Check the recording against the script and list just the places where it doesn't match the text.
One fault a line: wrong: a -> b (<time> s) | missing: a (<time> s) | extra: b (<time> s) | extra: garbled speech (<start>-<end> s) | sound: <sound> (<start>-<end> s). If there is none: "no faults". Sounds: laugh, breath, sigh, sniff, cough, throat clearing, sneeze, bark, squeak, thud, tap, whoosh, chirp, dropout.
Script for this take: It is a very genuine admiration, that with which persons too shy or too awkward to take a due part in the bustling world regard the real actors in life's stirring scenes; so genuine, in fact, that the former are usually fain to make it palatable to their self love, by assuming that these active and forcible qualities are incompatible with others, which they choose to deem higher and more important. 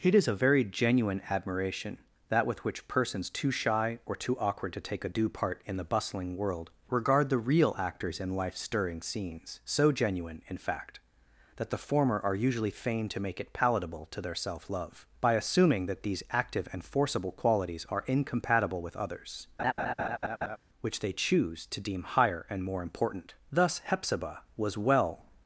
sound: laugh (19.6-20.6 s)
extra: Thus Hepzibah was well (23.5 s)